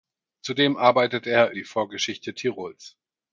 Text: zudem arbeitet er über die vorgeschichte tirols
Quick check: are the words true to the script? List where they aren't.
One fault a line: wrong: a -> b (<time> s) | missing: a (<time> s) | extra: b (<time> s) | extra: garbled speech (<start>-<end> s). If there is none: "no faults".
missing: über (1.5 s)